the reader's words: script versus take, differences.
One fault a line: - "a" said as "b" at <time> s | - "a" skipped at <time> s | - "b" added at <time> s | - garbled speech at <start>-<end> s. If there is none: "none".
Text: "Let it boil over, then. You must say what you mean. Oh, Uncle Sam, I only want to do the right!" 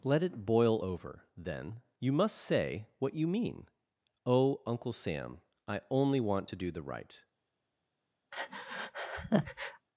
none